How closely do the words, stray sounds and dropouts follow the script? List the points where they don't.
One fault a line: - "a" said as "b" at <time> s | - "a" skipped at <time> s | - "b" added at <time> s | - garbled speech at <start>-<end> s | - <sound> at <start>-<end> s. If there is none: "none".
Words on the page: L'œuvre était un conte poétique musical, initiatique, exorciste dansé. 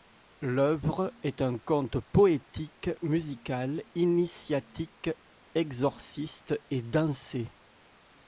- "était" said as "est" at 1.2 s
- "et" added at 6.7 s